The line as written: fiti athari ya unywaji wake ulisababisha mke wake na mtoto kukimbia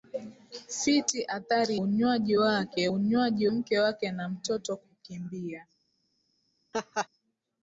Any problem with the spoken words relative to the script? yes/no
yes